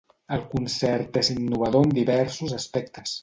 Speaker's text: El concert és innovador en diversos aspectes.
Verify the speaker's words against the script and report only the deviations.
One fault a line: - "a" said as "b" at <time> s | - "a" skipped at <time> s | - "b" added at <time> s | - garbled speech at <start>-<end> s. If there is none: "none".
none